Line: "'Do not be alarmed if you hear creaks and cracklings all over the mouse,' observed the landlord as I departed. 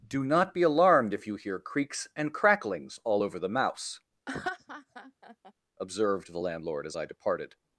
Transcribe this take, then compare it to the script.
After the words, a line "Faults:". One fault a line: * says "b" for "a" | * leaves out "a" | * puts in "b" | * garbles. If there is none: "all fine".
"'Do not be alarmed if you hear creaks and cracklings all over the mouse,' observed the landlord as I departed.
Faults:
all fine